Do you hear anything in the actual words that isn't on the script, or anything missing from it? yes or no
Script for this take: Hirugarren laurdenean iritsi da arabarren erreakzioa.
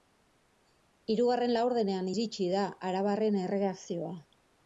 no